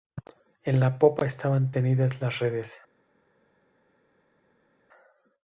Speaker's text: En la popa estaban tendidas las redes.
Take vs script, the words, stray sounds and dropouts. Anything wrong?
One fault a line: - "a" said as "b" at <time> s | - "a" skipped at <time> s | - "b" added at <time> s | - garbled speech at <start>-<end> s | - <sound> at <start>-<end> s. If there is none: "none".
none